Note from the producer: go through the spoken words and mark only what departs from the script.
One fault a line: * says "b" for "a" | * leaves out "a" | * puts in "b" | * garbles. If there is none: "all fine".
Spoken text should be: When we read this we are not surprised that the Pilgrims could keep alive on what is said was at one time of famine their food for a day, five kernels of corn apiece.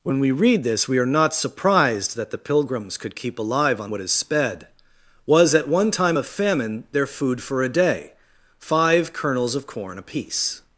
* says "sped" for "said"